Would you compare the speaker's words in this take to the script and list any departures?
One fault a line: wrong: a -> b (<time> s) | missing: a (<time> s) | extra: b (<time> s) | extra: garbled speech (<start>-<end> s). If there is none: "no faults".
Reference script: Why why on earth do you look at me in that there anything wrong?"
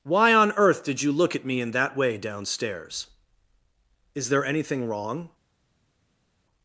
missing: why (0.3 s)
wrong: do -> did (0.8 s)
extra: way downstairs Is (1.9 s)